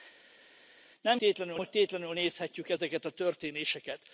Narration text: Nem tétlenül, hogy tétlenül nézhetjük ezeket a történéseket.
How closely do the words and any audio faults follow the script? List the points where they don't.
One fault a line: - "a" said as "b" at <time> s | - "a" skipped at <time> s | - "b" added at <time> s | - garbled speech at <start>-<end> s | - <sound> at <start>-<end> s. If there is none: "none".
none